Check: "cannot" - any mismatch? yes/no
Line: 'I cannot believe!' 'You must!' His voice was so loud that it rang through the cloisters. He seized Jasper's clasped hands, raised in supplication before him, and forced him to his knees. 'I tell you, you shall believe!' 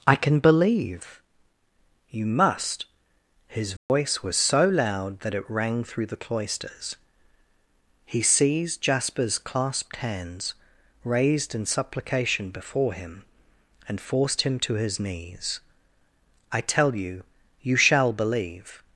yes